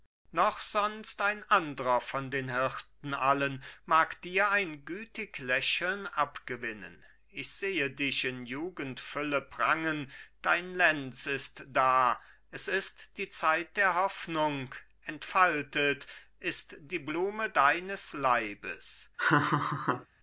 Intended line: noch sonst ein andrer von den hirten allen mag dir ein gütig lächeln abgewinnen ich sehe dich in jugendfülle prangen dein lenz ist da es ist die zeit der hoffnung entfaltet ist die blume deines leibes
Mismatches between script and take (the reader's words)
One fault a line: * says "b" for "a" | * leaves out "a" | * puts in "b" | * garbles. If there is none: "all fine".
all fine